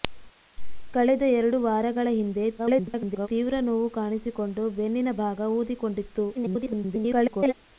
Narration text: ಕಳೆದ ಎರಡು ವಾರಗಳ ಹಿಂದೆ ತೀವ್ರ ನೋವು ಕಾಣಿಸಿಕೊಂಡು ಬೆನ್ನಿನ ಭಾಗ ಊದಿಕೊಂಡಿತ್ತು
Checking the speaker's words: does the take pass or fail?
fail